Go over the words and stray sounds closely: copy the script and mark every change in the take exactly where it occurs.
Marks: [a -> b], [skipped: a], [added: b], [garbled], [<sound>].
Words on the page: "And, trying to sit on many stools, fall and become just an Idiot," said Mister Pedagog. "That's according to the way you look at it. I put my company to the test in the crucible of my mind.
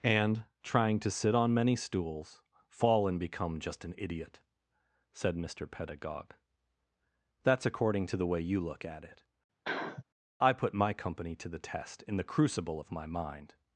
"And, trying to sit on many stools, fall and become just an Idiot," said Mister Pedagog. "That's according to the way you look at it. [sniff] I put my company to the test in the crucible of my mind.